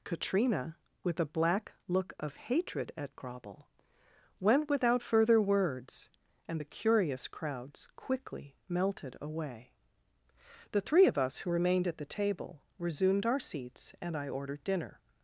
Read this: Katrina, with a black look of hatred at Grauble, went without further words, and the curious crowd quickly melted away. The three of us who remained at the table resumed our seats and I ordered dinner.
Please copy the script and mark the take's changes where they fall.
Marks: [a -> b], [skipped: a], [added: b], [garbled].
Katrina, with a black look of hatred at Grauble, went without further words, and the curious [crowd -> crowds] quickly melted away. The three of us who remained at the table resumed our seats and I ordered dinner.